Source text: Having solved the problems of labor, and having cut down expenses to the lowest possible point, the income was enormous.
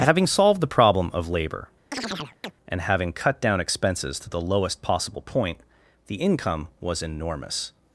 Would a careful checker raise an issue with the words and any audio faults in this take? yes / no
yes